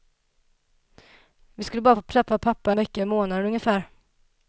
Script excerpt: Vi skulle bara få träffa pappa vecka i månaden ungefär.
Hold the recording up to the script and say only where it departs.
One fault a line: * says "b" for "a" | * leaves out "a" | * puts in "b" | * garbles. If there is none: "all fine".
all fine